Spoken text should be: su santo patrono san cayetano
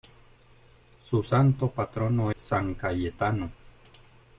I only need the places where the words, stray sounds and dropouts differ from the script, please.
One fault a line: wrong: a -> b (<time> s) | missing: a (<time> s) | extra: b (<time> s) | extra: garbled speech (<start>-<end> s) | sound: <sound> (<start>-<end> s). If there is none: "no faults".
no faults